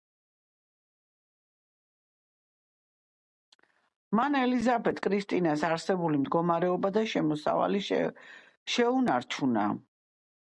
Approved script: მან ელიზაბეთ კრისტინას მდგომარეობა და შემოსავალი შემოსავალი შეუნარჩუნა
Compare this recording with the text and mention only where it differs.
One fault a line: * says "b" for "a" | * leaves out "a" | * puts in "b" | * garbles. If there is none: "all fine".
* puts in "არსებული"
* leaves out "შემოსავალი"